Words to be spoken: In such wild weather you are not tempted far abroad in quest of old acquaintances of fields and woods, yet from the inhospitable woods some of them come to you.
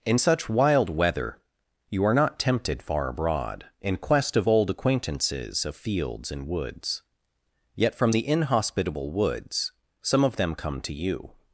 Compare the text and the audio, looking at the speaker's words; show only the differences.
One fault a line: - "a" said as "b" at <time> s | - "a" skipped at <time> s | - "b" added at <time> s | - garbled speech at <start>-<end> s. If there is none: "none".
none